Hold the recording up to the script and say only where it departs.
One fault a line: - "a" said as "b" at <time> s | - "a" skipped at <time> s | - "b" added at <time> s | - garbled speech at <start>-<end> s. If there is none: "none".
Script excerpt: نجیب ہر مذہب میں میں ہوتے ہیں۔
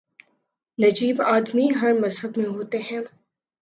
- "آدمی" added at 1.2 s
- "میں" skipped at 2.5 s